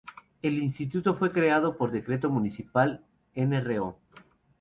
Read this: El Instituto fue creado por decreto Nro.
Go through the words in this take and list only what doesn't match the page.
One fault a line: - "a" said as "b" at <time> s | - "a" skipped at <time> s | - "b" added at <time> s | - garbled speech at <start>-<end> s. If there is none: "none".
- "Municipal" added at 2.3 s